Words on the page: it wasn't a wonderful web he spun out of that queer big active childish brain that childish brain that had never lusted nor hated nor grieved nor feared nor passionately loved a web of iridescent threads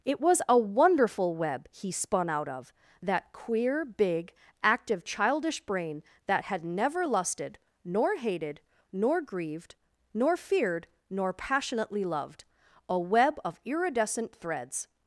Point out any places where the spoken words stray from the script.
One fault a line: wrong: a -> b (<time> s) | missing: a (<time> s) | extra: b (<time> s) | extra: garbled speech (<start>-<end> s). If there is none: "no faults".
wrong: wasn't -> was (0.2 s)
missing: childish brain that (6.5 s)